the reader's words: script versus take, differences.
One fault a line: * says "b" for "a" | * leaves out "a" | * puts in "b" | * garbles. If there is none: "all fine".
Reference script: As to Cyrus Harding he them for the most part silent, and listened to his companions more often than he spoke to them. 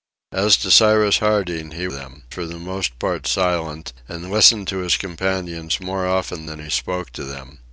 all fine